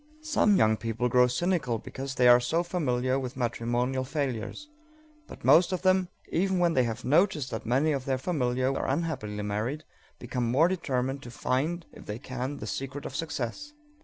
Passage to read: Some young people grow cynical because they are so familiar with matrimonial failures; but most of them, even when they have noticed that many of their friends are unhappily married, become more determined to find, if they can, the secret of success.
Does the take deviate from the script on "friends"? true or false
true